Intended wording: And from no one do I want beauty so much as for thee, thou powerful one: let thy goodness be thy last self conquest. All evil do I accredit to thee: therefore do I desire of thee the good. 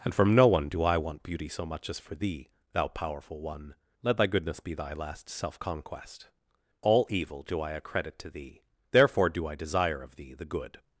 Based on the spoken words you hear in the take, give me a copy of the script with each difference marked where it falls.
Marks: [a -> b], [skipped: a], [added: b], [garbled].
And from no one do I want beauty so much as for thee, thou powerful one: let thy goodness be thy last self conquest. All evil do I accredit to thee: therefore do I desire of thee the good.